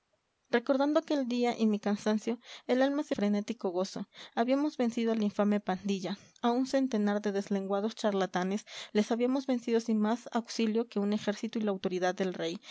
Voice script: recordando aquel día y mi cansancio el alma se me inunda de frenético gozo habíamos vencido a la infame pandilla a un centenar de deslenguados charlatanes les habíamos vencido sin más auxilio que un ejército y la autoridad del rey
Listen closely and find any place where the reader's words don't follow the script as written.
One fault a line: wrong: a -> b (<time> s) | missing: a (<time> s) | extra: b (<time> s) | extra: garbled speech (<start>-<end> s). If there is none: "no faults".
missing: me inunda de (3.1 s)